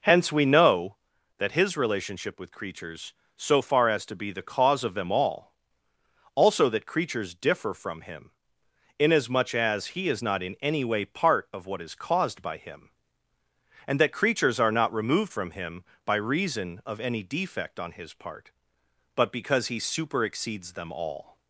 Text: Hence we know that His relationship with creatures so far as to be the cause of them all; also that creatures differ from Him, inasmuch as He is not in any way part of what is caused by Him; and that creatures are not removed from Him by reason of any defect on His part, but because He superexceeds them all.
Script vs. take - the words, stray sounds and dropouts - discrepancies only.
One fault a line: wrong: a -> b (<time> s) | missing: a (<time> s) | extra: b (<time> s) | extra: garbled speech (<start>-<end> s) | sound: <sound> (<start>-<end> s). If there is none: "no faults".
no faults